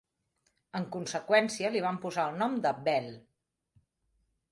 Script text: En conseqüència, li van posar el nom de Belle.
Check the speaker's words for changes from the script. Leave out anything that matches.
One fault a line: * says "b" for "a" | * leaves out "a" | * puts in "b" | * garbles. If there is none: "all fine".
all fine